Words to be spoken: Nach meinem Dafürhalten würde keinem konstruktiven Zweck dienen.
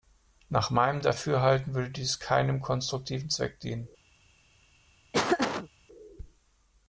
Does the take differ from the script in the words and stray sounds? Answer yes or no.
yes